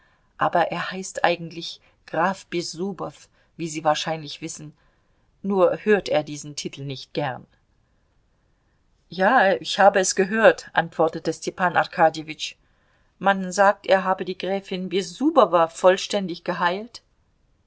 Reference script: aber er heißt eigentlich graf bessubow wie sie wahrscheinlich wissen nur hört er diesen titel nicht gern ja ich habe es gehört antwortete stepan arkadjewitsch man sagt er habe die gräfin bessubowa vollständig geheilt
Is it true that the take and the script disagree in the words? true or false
false